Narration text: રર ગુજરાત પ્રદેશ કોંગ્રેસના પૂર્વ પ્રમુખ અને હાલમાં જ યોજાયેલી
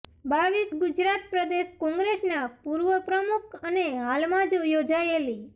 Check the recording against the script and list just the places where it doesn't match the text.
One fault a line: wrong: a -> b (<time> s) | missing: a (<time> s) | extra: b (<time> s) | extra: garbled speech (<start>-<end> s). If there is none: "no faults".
no faults